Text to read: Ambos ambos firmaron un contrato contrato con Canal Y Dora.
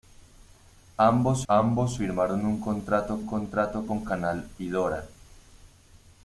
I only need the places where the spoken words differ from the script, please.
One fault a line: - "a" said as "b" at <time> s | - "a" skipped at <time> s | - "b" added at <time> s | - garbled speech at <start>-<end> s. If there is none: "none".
none